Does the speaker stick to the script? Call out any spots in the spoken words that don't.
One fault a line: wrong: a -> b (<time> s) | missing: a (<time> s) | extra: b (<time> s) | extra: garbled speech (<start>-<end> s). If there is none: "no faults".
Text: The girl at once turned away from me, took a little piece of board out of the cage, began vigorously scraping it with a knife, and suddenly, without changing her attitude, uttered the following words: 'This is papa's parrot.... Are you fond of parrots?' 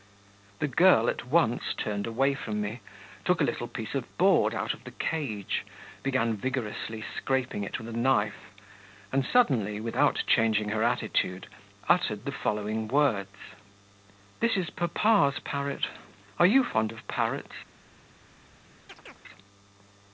no faults